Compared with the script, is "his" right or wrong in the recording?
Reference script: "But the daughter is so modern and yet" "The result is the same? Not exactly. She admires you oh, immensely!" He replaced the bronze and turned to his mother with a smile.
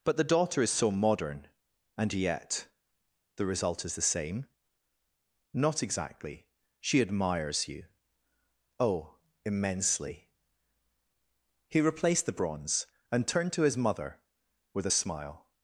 right